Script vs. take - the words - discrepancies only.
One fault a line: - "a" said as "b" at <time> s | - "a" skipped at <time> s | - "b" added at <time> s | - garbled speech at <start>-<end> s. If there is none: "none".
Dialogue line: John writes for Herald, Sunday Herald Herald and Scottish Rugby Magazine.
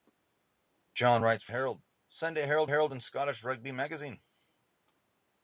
none